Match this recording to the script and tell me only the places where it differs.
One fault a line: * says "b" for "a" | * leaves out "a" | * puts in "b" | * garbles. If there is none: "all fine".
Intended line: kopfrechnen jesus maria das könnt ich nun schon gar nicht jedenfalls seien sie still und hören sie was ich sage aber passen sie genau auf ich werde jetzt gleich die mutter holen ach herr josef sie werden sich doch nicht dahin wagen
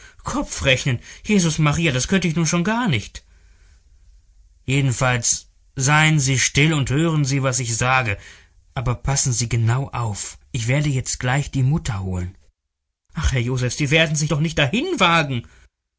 all fine